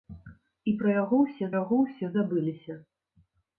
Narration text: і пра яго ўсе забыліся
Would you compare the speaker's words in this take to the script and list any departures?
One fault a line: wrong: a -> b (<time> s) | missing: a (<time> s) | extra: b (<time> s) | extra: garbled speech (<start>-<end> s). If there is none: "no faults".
extra: яго ўсе (1.6 s)